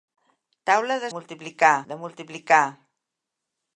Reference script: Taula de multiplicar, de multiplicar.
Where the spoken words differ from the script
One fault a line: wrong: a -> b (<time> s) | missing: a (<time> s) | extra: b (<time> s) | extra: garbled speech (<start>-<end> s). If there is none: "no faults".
no faults